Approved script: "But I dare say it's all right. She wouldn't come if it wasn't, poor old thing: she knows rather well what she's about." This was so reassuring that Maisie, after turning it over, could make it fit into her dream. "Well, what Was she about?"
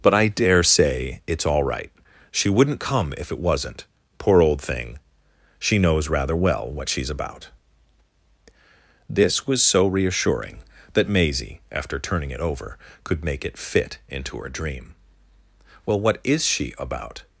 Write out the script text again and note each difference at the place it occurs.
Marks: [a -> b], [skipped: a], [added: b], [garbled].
"But I dare say it's all right. She wouldn't come if it wasn't, poor old thing: she knows rather well what she's about." This was so reassuring that Maisie, after turning it over, could make it fit into her dream. "Well, what [Was -> IS] she about?"